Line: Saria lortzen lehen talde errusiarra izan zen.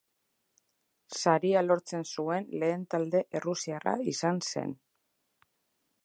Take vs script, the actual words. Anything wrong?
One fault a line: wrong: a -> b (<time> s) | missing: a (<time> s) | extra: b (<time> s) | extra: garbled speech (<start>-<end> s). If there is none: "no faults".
extra: zuen (2.1 s)